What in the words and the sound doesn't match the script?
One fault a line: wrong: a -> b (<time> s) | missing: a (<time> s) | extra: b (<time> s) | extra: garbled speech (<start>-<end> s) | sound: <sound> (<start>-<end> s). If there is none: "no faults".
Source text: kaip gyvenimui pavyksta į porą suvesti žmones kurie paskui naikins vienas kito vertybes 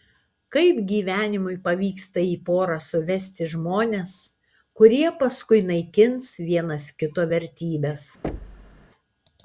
sound: thud (8.2-8.9 s)